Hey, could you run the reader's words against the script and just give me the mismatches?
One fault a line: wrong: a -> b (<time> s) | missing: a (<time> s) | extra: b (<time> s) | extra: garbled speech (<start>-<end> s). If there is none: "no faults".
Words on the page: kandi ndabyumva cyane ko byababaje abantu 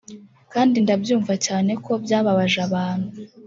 no faults